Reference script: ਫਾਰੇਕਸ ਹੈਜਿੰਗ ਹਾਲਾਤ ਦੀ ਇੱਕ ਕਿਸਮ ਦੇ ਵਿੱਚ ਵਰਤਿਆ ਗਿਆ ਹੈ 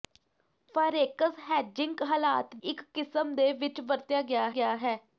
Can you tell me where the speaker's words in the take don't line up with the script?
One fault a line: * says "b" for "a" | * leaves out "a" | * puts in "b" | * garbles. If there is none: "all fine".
* leaves out "ਦੀ"
* puts in "ਗਿਆ"